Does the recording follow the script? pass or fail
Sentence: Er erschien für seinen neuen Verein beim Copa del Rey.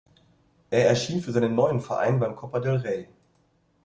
pass